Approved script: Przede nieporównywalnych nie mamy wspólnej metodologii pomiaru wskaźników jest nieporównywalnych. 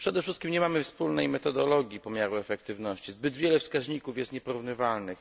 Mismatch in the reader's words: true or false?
true